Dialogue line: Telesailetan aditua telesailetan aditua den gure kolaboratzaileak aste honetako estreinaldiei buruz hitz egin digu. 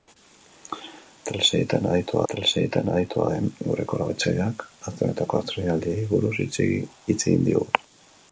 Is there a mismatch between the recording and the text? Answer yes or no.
no